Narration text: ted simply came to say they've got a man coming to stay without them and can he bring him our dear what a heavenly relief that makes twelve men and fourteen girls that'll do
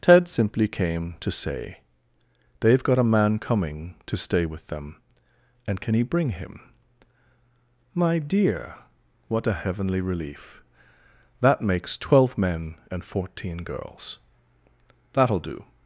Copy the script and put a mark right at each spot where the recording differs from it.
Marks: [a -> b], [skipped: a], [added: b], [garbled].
ted simply came to say they've got a man coming to stay [without -> with] them and can he bring him [our -> my] dear what a heavenly relief that makes twelve men and fourteen girls that'll do